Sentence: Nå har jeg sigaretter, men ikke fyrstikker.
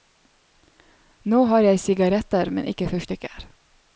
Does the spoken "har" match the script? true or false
true